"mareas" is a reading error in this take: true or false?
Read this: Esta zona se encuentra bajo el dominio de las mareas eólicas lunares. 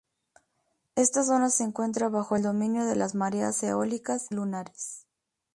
false